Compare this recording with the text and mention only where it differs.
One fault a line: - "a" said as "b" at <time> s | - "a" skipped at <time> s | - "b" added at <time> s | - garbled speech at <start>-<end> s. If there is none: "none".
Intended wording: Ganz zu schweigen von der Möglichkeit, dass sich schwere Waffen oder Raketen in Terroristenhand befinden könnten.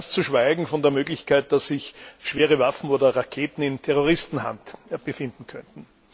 none